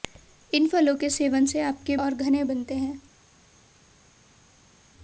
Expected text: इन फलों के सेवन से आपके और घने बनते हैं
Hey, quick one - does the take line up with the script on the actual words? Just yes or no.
yes